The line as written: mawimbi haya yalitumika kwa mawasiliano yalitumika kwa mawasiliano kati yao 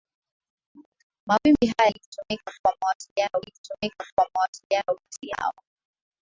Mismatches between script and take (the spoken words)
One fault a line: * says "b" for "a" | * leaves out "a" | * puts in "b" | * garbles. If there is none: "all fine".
all fine